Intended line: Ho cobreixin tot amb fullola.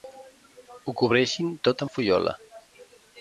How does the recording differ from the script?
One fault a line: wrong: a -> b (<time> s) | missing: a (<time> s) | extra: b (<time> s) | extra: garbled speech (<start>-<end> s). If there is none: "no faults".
no faults